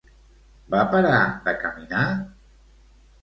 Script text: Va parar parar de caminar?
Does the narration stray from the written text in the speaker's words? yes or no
yes